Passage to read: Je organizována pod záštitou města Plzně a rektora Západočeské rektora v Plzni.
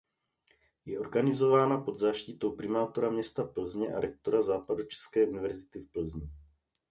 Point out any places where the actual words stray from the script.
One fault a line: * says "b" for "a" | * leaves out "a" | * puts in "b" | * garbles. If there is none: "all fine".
* puts in "primátora"
* says "univerzity" for "rektora"